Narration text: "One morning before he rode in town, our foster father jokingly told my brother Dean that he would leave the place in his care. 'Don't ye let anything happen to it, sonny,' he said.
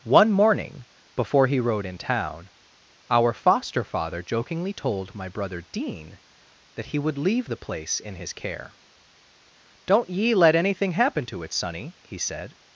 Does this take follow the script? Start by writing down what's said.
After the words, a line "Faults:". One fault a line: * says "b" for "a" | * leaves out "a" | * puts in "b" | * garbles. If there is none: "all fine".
"One morning before he rode in town, our foster father jokingly told my brother Dean that he would leave the place in his care. 'Don't ye let anything happen to it, sonny,' he said.
Faults:
all fine